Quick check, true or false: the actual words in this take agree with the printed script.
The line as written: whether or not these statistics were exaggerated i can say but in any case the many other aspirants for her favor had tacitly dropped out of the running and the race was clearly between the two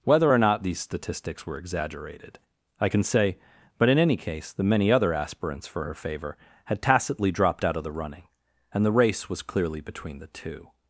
true